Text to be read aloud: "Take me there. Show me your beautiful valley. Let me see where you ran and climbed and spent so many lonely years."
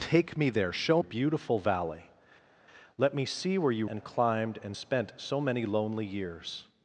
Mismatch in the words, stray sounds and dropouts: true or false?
true